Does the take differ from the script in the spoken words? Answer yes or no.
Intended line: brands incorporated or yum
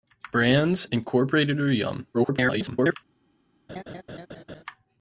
yes